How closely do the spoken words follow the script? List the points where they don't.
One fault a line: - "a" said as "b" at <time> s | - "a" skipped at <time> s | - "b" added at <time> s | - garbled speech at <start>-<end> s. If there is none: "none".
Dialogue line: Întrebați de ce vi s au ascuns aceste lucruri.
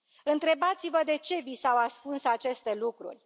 - "vă" added at 0.9 s